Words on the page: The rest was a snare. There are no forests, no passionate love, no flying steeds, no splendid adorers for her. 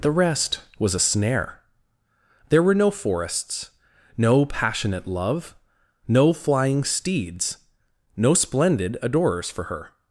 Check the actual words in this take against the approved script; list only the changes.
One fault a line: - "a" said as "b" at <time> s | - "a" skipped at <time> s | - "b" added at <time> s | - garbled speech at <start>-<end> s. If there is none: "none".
- "are" said as "were" at 2.6 s